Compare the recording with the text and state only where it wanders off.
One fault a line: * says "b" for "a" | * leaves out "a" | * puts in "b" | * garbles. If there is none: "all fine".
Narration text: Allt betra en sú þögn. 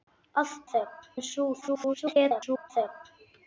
* says "þögn" for "betra"
* garbles